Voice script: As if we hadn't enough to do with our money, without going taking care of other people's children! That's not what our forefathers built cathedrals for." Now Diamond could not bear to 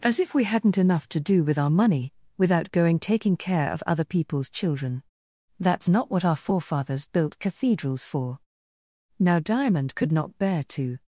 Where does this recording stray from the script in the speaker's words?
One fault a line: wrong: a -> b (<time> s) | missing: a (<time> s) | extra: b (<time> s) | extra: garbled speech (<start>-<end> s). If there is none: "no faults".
no faults